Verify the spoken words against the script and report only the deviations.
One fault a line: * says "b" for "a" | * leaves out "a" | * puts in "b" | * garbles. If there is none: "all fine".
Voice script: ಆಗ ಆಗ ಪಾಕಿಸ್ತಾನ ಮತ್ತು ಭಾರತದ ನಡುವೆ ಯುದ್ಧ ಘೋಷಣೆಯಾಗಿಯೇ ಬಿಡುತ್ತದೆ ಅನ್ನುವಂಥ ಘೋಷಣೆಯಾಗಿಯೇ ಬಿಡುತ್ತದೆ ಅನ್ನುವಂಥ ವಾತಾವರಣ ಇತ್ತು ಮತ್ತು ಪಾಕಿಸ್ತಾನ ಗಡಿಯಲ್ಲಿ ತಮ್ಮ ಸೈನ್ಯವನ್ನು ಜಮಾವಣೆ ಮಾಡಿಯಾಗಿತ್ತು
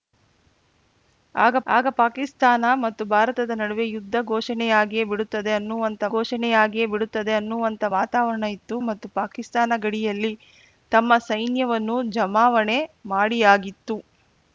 all fine